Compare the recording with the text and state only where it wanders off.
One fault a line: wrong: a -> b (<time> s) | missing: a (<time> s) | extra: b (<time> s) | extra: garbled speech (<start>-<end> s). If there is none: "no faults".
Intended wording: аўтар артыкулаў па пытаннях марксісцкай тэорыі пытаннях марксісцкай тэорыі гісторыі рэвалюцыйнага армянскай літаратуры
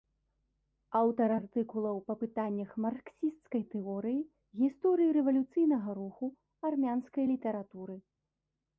missing: пытаннях марксісцкай тэорыі (4.2 s)
extra: руху (6.0 s)